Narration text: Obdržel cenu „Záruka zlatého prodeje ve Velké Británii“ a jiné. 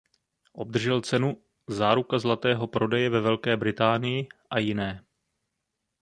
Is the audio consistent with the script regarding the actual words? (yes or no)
yes